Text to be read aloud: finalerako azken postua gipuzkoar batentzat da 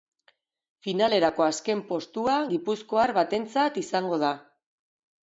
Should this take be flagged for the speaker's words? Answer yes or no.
yes